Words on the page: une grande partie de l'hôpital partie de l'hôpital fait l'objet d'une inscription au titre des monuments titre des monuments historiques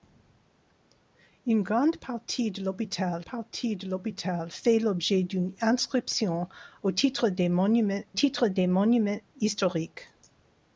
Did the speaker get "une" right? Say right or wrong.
right